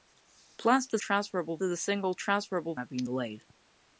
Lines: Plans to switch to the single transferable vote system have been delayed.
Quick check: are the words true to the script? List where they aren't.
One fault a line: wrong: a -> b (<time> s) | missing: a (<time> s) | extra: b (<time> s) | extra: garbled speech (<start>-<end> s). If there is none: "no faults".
wrong: switch -> transferable (1.0 s)
missing: vote system (2.8 s)